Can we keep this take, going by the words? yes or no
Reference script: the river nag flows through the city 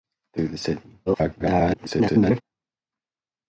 no